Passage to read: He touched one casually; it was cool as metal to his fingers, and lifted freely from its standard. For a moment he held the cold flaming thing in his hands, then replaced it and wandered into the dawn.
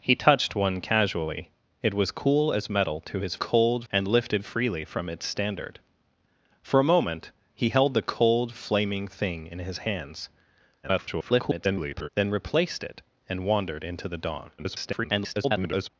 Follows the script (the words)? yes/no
no